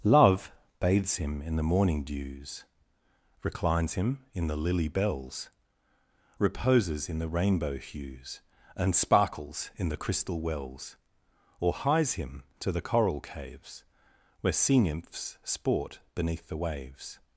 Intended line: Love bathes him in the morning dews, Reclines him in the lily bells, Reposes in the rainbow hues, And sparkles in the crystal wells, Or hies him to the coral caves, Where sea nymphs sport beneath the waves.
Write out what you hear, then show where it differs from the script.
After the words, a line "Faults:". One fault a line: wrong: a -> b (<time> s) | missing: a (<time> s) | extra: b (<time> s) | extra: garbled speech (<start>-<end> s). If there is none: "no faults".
Love bathes him in the morning dews, Reclines him in the lily bells, Reposes in the rainbow hues, And sparkles in the crystal wells, Or hies him to the coral caves, Where sea nymphs sport beneath the waves.
Faults:
no faults